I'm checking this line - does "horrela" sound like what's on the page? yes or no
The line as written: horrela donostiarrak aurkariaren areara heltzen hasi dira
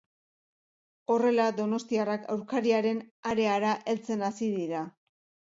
yes